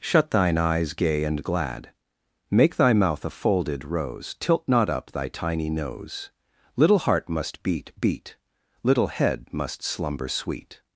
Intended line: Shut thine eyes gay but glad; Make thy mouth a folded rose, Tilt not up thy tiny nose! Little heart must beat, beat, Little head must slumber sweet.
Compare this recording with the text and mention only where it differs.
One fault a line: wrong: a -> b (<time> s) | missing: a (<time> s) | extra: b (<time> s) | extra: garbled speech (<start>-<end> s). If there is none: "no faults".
wrong: but -> and (1.2 s)